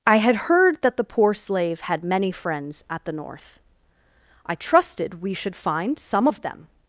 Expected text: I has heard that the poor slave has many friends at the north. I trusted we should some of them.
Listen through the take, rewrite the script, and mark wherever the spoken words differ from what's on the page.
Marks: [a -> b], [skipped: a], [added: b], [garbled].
I [has -> had] heard that the poor slave [has -> had] many friends at the north. I trusted we should [added: find] some of them.